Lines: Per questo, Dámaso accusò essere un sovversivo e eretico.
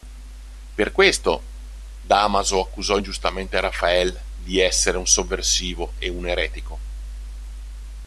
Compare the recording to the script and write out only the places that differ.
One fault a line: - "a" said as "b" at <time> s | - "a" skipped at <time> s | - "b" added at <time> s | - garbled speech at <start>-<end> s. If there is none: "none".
- "ingiustamente Rafael di" added at 2.9 s
- "un" added at 6.1 s